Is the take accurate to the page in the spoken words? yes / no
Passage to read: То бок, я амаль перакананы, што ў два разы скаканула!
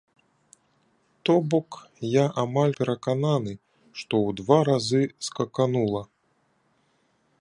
yes